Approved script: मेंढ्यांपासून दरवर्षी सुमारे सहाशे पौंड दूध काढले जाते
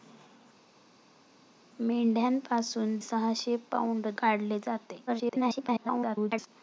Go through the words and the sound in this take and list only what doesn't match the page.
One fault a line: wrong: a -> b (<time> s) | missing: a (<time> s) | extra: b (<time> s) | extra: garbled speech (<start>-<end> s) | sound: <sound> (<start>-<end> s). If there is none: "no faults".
missing: दरवर्षी सुमारे (3.0 s)
missing: दूध (4.1 s)
extra: garbled speech (5.1-6.5 s)